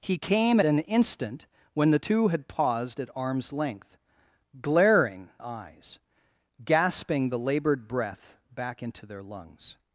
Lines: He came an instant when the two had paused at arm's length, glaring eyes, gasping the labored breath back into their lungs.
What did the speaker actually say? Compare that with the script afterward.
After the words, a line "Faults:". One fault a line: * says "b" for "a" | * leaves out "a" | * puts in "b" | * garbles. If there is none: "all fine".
He came an instant when the two had paused at arm's length, glaring eyes, gasping the labored breath back into their lungs.
Faults:
all fine